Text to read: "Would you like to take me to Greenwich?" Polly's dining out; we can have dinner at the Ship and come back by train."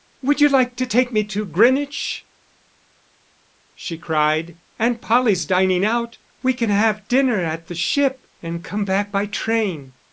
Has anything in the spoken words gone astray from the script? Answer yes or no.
yes